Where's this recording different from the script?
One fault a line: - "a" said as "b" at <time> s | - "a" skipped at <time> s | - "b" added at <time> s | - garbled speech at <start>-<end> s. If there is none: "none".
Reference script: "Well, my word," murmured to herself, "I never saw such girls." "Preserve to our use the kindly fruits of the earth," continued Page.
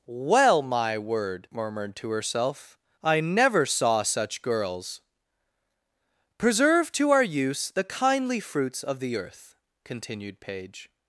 none